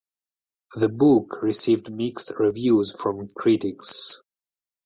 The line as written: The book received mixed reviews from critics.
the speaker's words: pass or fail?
pass